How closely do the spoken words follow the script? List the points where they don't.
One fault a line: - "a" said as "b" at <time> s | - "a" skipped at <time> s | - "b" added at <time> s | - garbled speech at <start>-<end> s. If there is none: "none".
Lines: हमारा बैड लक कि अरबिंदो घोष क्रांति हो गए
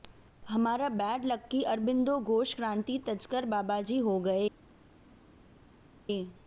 - "तजकर बाबाजी" added at 3.1 s